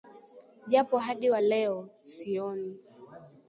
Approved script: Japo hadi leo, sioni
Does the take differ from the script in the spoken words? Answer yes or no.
yes